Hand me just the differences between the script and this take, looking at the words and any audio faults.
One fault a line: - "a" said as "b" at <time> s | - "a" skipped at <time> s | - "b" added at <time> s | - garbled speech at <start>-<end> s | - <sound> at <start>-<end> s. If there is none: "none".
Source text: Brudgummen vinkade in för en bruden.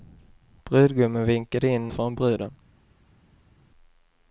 none